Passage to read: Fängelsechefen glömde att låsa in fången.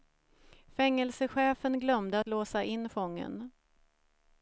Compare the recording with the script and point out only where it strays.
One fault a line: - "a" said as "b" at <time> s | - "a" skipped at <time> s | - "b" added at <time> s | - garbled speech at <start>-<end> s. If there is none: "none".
none